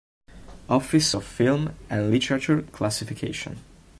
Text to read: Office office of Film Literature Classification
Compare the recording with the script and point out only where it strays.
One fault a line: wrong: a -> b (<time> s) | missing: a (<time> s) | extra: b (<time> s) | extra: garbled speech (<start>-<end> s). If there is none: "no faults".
missing: office (1.1 s)
extra: and (1.9 s)